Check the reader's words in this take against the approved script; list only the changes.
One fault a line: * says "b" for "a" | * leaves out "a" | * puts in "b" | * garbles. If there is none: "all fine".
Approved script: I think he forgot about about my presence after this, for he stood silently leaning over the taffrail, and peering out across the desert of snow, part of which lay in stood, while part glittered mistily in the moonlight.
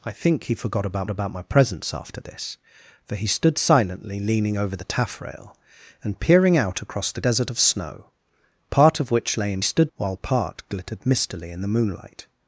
all fine